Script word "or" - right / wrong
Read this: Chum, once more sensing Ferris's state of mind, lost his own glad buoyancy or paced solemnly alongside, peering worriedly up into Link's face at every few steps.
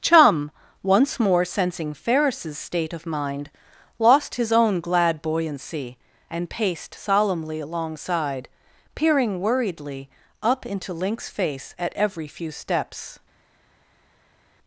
wrong